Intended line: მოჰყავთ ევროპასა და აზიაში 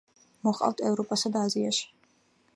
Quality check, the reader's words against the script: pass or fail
pass